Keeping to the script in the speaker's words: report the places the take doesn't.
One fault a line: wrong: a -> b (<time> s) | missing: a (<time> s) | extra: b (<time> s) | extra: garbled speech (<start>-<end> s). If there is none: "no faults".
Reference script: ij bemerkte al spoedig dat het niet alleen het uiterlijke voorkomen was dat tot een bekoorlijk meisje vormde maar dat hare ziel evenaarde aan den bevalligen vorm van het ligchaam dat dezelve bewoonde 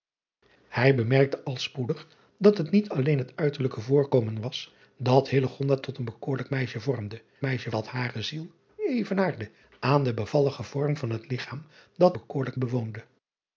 wrong: maar -> meisje (7.4 s)
wrong: dezelve -> bekoorlijk (12.1 s)